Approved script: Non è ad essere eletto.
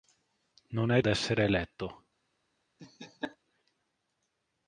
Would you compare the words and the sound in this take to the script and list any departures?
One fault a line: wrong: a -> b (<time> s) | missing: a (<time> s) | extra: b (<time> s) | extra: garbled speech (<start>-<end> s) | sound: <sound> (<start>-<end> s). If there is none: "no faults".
sound: laugh (2.8-3.4 s)